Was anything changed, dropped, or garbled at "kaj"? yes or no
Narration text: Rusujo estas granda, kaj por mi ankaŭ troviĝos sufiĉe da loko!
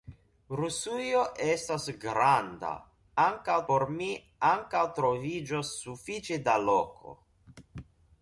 yes